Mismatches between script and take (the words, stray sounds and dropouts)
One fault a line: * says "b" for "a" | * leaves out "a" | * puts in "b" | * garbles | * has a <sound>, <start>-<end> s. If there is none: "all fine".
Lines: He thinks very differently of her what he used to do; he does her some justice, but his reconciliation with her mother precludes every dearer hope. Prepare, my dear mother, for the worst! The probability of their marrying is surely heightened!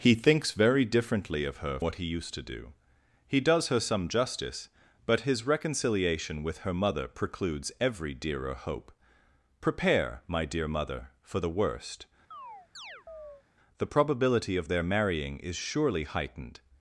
* has a chirp, 12.3-13.4 s